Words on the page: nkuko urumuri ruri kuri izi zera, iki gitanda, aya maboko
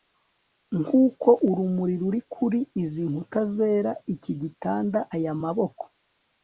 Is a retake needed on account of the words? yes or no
yes